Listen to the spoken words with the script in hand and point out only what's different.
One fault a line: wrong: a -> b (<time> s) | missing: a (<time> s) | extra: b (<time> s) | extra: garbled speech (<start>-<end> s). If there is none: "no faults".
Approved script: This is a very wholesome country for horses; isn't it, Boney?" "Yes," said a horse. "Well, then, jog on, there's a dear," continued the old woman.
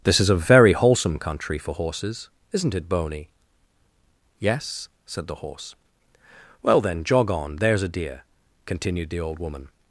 wrong: a -> the (5.3 s)